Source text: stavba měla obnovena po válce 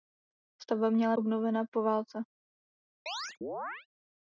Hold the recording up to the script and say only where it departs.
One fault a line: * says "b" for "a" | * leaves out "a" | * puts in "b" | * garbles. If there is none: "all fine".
all fine